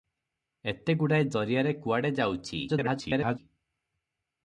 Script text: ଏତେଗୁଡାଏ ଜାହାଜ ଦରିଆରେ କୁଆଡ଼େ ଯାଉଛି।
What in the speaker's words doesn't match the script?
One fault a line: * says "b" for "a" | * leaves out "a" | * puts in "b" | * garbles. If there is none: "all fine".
* leaves out "ଜାହାଜ"
* garbles